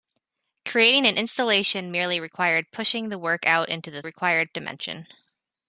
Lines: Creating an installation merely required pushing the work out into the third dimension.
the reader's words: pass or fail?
fail